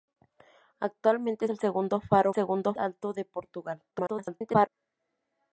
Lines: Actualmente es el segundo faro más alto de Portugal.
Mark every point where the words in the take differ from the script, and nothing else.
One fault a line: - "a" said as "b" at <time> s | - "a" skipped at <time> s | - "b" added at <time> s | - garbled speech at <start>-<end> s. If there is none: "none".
- "es" skipped at 1.4 s
- "más" said as "segundo" at 2.3 s
- garbled speech at 3.9-4.7 s